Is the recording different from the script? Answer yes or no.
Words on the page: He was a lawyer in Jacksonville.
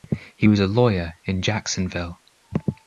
no